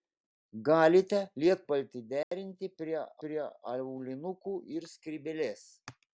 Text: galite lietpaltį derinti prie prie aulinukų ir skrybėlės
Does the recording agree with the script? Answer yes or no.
yes